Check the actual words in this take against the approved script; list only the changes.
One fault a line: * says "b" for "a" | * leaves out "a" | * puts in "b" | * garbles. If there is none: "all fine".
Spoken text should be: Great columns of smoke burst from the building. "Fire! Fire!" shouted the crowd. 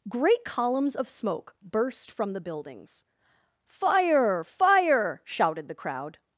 * says "buildings" for "building"